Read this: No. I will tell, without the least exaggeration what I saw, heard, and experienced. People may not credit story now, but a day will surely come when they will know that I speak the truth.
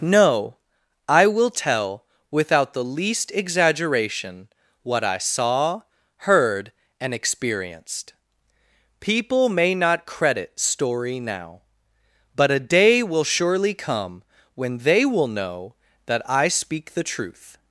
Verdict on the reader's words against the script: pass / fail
pass